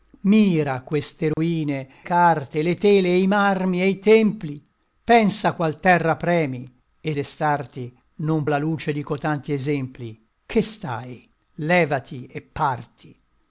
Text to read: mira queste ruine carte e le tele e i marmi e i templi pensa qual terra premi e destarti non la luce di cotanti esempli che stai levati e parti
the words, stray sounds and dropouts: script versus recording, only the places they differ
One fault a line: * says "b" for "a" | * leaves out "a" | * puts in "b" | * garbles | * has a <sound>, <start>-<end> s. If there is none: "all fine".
* has a dropout, 1.3-1.4 s